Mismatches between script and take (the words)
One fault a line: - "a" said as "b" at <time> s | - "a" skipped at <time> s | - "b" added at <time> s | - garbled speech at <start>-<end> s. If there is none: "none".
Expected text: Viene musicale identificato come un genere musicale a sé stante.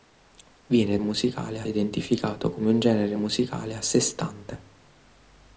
none